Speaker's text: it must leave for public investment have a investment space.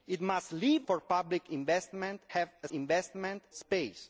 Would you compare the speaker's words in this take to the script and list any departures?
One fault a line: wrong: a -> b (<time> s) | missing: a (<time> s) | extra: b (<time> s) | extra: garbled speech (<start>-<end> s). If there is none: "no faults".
no faults